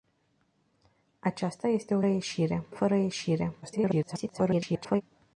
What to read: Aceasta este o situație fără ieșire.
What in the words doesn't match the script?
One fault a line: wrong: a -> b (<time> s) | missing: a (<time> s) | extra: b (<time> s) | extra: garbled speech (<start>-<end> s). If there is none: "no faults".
wrong: situație -> ieșire (2.1 s)
extra: garbled speech (3.6-5.0 s)